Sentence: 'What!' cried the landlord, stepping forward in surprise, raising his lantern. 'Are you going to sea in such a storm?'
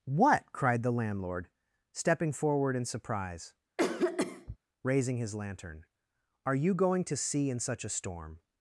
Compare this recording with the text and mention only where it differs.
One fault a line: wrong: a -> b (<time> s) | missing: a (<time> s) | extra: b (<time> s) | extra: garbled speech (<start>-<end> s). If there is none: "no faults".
no faults